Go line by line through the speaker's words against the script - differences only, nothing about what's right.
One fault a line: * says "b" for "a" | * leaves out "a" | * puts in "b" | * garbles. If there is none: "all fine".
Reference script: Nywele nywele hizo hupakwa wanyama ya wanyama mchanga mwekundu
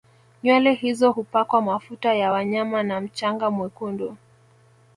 * leaves out "nywele"
* says "mafuta" for "wanyama"
* puts in "na"